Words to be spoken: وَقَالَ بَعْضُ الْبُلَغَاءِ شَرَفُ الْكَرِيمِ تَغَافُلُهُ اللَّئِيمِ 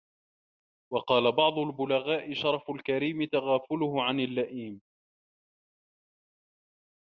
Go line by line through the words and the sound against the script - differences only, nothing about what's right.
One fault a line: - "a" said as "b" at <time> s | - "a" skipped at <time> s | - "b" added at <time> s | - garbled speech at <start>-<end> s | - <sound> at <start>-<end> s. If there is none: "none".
- "عَنْ" added at 4.0 s